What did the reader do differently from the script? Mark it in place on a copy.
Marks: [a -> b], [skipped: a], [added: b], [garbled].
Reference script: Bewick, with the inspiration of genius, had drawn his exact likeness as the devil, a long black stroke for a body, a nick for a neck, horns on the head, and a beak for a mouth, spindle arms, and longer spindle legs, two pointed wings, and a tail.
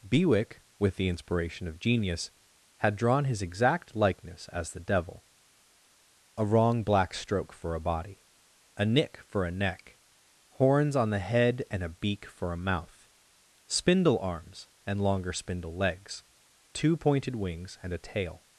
Bewick, with the inspiration of genius, had drawn his exact likeness as the devil, a [long -> wrong] black stroke for a body, a nick for a neck, horns on the head, and a beak for a mouth, spindle arms, and longer spindle legs, two pointed wings, and a tail.